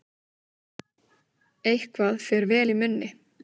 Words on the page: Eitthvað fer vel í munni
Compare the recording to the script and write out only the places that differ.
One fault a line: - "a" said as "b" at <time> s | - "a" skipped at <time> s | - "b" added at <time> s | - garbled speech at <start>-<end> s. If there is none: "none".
none